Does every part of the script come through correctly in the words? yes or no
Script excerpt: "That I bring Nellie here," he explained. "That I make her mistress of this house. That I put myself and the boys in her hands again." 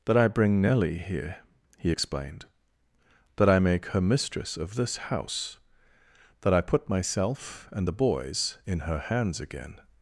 yes